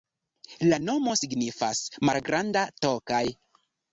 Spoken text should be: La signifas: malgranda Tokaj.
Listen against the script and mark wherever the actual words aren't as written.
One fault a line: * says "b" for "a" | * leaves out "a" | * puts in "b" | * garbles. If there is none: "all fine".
* puts in "nomo"